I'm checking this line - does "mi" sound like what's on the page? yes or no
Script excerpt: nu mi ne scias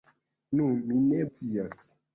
yes